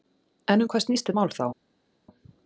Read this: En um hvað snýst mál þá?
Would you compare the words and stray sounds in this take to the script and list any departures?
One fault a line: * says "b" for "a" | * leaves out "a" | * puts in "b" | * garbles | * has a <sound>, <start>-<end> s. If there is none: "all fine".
all fine